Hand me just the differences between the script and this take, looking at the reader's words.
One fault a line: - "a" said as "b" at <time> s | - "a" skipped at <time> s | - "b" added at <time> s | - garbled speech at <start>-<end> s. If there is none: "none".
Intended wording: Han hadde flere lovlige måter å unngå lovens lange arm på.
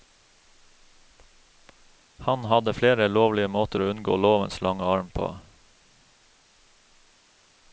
none